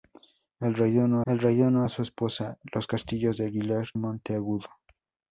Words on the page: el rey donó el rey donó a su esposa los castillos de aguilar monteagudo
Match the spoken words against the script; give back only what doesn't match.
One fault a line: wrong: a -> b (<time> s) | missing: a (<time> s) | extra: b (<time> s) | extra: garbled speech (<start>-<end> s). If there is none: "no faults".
no faults